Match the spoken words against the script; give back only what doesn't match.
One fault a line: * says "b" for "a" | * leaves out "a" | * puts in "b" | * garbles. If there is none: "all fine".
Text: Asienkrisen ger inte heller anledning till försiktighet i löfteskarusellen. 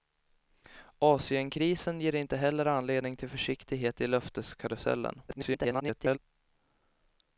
* garbles